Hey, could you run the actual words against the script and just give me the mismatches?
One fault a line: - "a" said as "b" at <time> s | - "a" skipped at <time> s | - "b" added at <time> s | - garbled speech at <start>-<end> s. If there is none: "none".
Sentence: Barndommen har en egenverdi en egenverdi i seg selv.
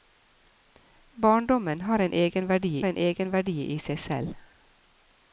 none